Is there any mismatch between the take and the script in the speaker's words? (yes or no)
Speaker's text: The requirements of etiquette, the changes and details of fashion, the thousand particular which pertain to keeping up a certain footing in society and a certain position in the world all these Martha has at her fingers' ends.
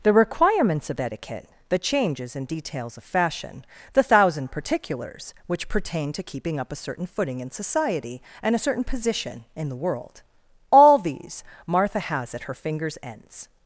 yes